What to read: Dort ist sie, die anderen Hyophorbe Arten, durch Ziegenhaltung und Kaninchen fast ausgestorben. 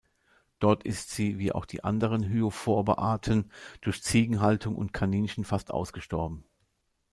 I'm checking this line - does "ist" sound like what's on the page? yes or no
yes